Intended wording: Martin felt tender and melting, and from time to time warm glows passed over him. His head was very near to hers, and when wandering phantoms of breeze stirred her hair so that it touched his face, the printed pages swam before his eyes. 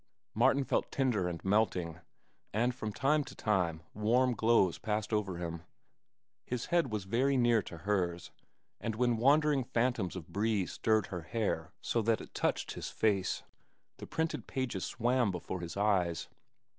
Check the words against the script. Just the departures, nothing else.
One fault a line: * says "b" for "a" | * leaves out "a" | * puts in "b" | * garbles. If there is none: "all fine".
all fine